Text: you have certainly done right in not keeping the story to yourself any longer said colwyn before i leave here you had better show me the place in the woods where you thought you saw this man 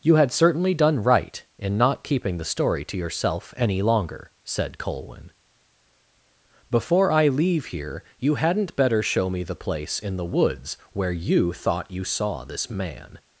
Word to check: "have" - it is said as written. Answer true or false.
false